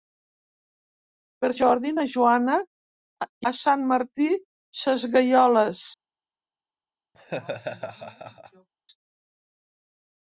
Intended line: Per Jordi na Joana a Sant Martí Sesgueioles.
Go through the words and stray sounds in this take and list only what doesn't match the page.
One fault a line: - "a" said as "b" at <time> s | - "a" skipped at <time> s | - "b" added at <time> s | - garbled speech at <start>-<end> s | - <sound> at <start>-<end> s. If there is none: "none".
- laugh at 7.1-8.7 s